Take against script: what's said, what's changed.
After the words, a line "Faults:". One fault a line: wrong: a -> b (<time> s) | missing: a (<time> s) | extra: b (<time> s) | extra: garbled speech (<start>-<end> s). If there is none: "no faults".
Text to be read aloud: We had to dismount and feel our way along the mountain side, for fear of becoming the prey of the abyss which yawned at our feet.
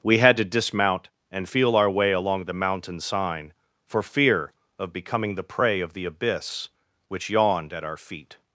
We had to dismount and feel our way along the mountain sign, for fear of becoming the prey of the abyss which yawned at our feet.
Faults:
wrong: side -> sign (3.0 s)